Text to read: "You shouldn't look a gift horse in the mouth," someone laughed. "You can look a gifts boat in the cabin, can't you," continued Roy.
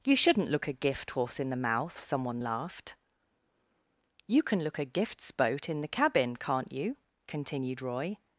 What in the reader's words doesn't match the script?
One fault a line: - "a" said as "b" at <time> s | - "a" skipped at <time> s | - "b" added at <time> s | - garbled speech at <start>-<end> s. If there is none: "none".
none